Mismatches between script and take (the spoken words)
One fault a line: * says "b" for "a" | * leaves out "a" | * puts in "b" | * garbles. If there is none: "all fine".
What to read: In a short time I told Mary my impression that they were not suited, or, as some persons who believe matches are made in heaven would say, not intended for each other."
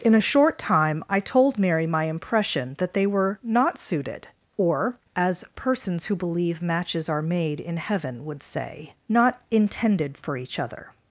* leaves out "some"